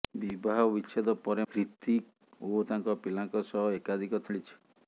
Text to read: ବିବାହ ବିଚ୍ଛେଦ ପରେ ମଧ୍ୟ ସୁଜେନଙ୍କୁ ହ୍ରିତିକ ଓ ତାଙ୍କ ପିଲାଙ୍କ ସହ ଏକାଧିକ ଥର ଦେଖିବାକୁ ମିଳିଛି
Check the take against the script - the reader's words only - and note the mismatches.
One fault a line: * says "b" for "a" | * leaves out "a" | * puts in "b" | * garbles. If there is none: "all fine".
* leaves out "ମଧ୍ୟ ସୁଜେନଙ୍କୁ"
* leaves out "ଥର ଦେଖିବାକୁ"